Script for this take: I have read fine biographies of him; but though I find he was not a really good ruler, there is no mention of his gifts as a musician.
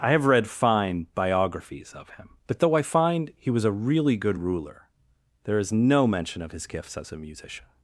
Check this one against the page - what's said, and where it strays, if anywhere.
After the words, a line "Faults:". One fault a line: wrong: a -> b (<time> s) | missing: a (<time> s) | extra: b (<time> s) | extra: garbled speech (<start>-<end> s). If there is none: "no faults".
I have read fine biographies of him; but though I find he was a really good ruler, there is no mention of his gifts as a musician.
Faults:
missing: not (3.6 s)